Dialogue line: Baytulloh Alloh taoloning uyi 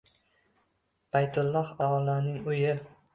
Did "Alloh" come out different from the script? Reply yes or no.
yes